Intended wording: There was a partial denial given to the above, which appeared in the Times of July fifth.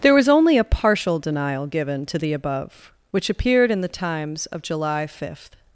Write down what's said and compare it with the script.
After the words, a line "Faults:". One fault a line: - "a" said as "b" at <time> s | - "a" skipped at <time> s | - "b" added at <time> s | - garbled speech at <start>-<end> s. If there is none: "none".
There was only a partial denial given to the above, which appeared in the Times of July fifth.
Faults:
- "only" added at 0.3 s